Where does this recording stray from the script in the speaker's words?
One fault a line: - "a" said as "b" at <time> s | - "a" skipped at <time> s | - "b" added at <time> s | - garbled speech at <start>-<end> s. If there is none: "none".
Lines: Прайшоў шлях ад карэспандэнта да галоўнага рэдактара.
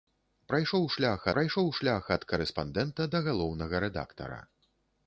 - "прайшоў шлях" added at 1.4 s